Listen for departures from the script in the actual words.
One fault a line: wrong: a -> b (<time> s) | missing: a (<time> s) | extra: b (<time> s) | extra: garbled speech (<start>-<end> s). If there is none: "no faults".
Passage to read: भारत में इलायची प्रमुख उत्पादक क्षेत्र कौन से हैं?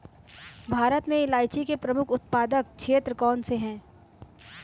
extra: के (1.6 s)